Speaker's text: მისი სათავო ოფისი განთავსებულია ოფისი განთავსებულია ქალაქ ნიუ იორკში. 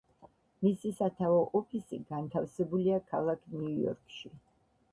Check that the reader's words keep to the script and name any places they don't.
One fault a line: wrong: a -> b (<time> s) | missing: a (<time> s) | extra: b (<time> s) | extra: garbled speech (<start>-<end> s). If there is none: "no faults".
missing: ოფისი განთავსებულია (3.0 s)